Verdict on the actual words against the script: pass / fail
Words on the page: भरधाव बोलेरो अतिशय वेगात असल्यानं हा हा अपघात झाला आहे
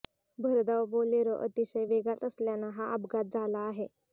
fail